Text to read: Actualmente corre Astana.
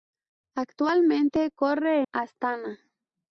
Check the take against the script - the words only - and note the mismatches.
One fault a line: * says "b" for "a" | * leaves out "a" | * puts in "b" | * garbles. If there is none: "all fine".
all fine